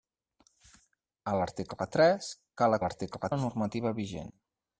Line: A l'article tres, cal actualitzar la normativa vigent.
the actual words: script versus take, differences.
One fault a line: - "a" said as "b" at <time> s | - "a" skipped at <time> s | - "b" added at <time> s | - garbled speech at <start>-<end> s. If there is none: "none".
- "actualitzar" said as "l'article" at 2.8 s